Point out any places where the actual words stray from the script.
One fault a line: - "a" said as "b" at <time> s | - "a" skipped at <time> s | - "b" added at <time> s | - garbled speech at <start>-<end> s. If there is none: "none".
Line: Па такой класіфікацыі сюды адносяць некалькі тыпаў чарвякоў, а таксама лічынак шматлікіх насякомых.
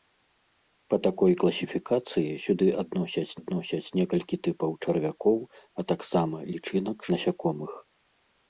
- "адносяць" added at 3.4 s
- "шматлікіх" skipped at 7.0 s